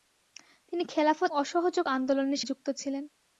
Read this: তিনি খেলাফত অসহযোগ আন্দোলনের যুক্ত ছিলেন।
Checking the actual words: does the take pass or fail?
pass